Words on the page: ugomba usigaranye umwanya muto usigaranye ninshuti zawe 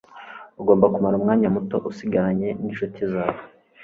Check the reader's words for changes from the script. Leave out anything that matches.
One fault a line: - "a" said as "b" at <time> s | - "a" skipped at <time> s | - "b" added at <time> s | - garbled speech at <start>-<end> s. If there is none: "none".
- "usigaranye" said as "kumara" at 0.9 s